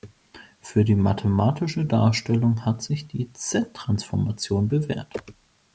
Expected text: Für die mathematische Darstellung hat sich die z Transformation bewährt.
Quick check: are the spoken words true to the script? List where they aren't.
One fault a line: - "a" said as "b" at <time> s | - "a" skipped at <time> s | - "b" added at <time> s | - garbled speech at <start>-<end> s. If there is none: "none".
none